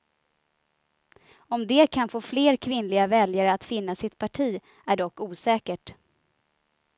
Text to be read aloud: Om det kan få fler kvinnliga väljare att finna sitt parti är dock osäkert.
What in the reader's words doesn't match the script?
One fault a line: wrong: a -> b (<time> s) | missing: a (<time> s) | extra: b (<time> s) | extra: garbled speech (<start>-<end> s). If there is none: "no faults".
no faults